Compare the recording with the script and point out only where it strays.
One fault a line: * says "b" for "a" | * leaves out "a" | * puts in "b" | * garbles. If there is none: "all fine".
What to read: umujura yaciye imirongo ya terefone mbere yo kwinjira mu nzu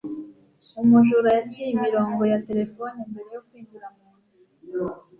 all fine